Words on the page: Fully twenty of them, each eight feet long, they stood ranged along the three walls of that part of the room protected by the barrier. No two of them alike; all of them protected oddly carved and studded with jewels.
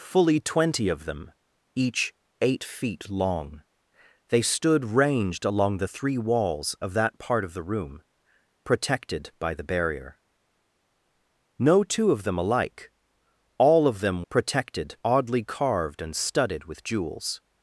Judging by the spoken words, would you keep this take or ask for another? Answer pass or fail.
pass